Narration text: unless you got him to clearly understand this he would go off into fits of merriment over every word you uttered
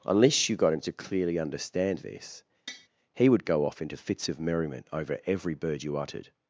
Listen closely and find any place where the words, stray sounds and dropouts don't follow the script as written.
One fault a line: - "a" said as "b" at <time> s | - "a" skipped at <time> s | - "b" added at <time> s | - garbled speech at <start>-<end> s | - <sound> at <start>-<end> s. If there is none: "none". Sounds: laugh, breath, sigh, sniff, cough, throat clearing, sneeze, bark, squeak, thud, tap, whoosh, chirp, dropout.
- tap at 2.7-2.9 s
- "word" said as "bird" at 5.6 s